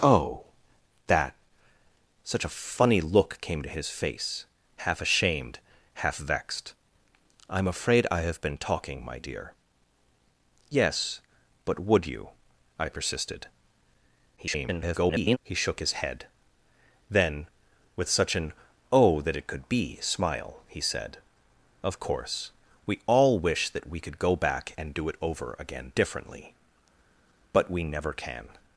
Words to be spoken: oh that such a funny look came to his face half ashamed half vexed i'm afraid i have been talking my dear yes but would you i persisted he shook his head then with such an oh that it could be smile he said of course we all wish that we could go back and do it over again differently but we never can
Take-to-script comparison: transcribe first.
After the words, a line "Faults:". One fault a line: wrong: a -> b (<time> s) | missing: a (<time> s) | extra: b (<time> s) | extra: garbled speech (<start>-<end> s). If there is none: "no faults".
oh that such a funny look came to his face half ashamed half vexed i'm afraid i have been talking my dear yes but would you i persisted [garbled] he shook his head then with such an oh that it could be smile he said of course we all wish that we could go back and do it over again differently but we never can
Faults:
extra: garbled speech (14.4-15.4 s)